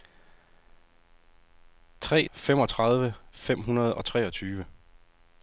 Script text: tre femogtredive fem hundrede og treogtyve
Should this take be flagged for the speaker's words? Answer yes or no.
no